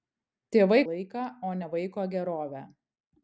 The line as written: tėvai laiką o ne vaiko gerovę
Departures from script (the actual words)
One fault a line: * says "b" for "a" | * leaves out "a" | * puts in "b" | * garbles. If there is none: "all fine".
all fine